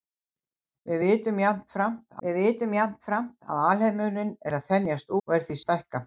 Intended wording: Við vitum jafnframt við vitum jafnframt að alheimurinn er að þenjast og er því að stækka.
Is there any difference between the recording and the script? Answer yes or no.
no